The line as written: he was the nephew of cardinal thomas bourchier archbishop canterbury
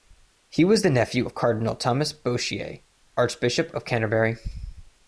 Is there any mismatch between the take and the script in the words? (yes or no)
yes